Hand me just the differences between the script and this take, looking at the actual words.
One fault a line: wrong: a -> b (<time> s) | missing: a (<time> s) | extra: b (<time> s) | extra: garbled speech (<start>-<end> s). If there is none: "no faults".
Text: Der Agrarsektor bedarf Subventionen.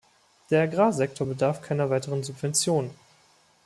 extra: keiner weiteren (1.6 s)